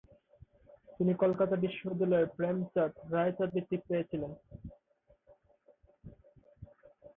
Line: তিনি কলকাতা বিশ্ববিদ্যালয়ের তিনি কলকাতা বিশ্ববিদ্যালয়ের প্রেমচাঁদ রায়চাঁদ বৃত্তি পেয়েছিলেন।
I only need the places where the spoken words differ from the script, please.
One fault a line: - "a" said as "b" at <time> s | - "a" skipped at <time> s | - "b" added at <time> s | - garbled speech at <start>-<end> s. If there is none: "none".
- "তিনি কলকাতা বিশ্ববিদ্যালয়ের" skipped at 2.3 s